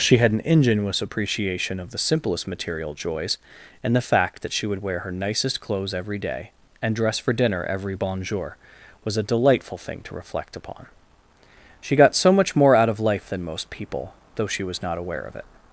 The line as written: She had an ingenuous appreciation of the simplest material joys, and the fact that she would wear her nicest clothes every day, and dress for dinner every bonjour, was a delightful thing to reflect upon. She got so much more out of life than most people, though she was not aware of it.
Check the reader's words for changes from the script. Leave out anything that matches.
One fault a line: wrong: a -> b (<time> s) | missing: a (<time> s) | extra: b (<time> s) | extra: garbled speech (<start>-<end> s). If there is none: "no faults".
no faults